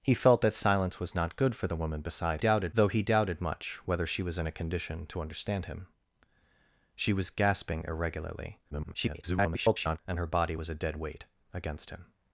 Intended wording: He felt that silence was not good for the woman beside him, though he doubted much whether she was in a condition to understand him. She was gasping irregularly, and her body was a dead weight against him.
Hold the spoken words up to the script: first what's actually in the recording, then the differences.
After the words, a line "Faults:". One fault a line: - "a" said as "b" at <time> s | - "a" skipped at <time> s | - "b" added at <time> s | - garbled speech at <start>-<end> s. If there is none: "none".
He felt that silence was not good for the woman beside doubted, though he doubted much whether she was in a condition to understand him. She was gasping irregularly, [garbled] and her body was a dead weight against him.
Faults:
- "him" said as "doubted" at 2.4 s
- garbled speech at 8.7-10.0 s